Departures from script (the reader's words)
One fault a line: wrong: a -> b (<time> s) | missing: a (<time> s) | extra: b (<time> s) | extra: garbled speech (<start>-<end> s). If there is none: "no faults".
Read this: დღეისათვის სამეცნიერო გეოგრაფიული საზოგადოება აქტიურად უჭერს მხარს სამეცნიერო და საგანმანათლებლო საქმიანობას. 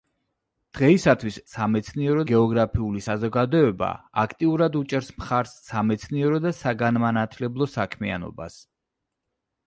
no faults